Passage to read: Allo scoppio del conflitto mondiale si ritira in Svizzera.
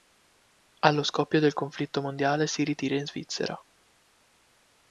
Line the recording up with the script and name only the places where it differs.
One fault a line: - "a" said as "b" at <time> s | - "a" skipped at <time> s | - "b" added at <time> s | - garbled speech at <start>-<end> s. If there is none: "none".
none